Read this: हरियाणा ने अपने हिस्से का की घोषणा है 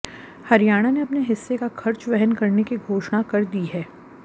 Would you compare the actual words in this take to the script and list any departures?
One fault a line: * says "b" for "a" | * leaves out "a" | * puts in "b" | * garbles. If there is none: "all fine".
* puts in "खर्च वहन करने"
* puts in "कर दी"